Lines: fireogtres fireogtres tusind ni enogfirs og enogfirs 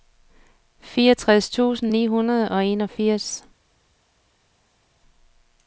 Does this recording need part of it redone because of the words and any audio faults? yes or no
yes